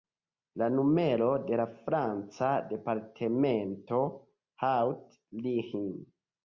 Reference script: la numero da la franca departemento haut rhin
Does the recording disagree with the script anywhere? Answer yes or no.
yes